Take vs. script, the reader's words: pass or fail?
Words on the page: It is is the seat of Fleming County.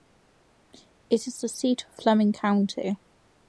fail